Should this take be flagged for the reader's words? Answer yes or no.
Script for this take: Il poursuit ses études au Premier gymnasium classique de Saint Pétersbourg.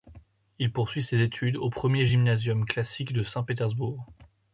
no